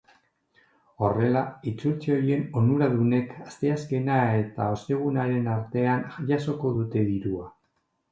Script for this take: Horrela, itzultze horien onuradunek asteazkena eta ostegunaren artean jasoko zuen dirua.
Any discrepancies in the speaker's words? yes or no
yes